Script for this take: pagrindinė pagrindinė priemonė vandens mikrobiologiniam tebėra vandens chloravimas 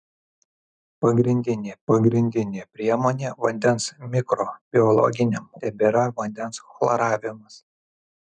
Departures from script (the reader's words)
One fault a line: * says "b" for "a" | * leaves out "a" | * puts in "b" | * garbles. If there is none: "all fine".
all fine